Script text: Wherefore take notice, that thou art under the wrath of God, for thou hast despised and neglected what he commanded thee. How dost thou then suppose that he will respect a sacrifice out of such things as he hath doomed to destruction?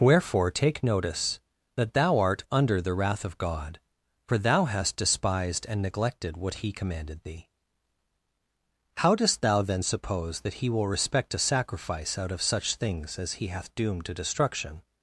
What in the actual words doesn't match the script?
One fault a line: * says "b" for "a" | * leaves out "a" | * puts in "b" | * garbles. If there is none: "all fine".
all fine